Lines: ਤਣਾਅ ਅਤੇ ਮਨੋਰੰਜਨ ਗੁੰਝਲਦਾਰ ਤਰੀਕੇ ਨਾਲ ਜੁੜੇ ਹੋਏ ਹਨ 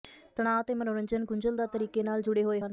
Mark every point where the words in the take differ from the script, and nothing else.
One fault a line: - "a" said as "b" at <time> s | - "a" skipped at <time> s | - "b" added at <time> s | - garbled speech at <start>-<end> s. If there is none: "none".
none